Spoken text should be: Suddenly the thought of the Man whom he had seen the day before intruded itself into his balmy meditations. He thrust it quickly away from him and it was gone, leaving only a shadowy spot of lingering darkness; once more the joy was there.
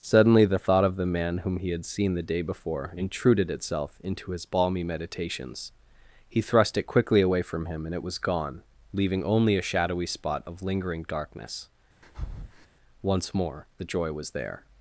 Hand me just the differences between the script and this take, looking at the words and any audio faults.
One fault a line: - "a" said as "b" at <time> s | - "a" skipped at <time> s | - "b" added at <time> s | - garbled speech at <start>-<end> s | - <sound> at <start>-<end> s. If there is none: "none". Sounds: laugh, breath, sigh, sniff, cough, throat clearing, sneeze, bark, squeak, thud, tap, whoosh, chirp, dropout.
- breath at 12.0-12.7 s